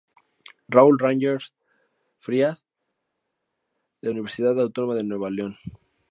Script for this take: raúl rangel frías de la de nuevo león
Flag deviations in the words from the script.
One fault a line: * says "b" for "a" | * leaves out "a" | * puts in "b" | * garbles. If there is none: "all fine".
* puts in "universidad autónoma"